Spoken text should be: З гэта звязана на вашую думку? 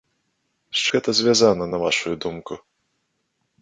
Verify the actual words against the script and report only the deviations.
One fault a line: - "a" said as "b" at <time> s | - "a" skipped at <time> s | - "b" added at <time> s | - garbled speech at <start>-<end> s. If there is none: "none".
none